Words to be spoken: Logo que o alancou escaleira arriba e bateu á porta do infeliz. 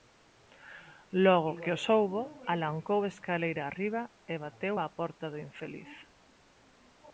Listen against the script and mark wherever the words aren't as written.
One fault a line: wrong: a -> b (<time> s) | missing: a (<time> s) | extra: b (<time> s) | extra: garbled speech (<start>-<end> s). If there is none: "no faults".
extra: soubo (1.9 s)